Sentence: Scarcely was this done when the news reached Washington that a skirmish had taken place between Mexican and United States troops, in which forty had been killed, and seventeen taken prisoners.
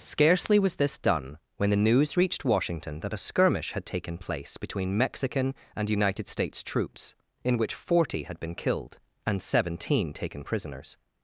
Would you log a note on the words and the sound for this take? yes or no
no